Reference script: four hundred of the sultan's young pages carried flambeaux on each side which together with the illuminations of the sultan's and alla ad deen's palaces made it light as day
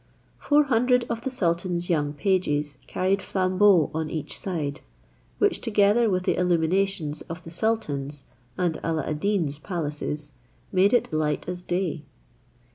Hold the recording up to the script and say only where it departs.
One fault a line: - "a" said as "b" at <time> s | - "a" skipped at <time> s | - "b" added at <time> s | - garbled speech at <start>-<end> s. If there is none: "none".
none